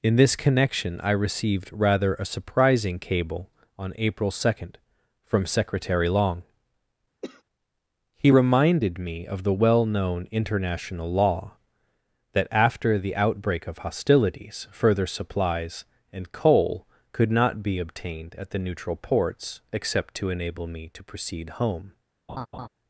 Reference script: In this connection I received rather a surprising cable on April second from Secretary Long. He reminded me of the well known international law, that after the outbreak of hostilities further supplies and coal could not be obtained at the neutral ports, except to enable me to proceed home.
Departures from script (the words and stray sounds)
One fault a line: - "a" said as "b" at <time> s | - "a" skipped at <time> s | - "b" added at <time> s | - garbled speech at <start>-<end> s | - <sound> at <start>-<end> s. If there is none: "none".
- cough at 7.2-7.4 s
- laugh at 22.3-22.7 s